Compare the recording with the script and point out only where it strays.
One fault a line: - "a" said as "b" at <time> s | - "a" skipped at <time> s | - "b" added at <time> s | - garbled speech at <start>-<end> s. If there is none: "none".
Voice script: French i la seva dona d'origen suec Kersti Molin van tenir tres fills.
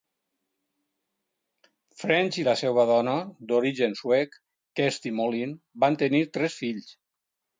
none